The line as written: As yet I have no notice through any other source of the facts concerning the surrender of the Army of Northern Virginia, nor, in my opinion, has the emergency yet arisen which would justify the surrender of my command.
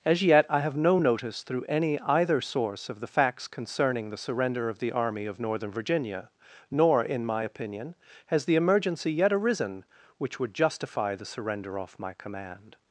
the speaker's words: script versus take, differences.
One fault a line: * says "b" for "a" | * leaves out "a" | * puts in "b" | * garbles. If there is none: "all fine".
* says "either" for "other"
* says "off" for "of"